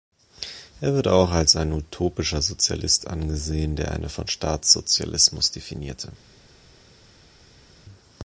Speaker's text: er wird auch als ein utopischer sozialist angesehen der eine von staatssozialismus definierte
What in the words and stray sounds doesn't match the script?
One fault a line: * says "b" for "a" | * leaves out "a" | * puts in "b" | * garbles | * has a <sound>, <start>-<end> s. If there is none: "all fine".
all fine